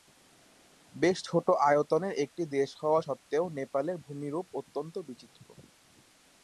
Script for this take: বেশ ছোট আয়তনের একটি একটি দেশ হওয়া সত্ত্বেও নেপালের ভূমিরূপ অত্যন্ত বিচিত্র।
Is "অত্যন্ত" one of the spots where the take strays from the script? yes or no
no